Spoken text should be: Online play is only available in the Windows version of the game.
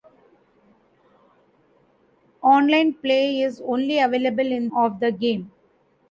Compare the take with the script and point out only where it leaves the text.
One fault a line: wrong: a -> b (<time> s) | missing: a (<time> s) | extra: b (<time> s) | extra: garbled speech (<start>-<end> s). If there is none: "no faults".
missing: the Windows version (4.7 s)